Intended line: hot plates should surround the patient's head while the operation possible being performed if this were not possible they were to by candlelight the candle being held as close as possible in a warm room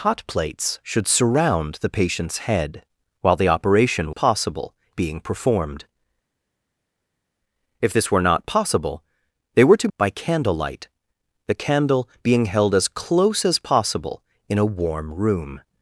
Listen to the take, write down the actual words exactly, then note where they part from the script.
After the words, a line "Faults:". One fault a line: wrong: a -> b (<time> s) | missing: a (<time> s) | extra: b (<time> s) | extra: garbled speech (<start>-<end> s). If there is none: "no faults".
hot plates should surround the patient's head while the operation possible being performed if this were not possible they were to by candlelight the candle being held as close as possible in a warm room
Faults:
no faults